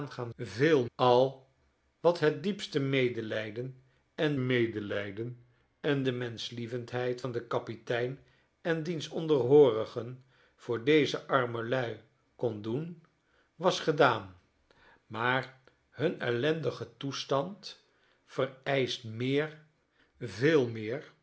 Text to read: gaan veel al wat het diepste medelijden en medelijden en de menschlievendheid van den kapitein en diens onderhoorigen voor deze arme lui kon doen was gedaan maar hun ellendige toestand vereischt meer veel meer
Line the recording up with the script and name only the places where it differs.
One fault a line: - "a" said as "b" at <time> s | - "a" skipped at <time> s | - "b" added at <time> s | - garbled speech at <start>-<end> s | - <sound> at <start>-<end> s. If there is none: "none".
none